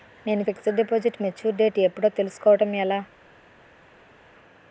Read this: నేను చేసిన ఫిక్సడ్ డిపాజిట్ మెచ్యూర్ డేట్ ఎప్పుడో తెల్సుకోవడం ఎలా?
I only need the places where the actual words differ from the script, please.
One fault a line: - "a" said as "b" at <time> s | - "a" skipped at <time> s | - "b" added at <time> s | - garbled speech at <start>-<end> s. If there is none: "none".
- "చేసిన" skipped at 0.4 s